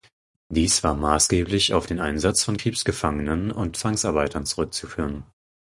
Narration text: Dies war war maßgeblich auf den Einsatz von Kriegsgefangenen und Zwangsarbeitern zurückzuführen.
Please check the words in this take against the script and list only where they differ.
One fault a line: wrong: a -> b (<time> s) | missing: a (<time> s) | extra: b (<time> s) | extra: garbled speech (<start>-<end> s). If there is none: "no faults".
missing: war (0.9 s)